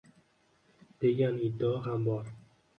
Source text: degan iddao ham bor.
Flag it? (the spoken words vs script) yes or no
no